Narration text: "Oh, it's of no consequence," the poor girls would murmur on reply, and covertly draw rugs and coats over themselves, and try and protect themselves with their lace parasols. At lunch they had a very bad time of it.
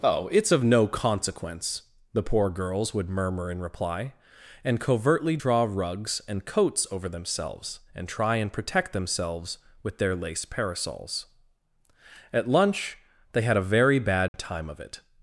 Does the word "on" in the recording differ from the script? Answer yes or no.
yes